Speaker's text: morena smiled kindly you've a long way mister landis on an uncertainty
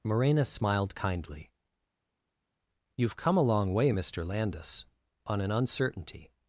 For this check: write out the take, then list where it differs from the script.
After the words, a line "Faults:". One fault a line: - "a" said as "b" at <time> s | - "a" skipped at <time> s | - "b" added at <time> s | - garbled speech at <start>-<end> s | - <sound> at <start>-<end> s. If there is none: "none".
morena smiled kindly you've come a long way mister landis on an uncertainty
Faults:
- "come" added at 3.2 s